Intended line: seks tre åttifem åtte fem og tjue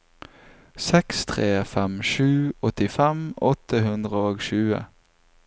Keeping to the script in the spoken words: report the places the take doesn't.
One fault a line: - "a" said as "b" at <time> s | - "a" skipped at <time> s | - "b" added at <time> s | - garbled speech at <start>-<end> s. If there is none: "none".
- "fem sju" added at 1.7 s
- "fem" said as "hundre" at 3.9 s